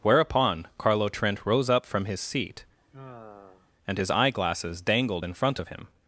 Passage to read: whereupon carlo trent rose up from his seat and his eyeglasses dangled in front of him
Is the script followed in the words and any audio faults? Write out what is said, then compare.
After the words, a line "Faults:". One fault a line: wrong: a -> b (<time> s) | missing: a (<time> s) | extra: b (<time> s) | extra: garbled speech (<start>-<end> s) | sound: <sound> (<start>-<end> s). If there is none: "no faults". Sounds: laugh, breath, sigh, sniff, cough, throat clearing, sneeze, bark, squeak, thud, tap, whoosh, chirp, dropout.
whereupon carlo trent rose up from his seat and his eyeglasses dangled in front of him
Faults:
sound: sigh (2.8-3.7 s)